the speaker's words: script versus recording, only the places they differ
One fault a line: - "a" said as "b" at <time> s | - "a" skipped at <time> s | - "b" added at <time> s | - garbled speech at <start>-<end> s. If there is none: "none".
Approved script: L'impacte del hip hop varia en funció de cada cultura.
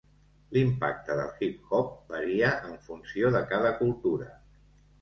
none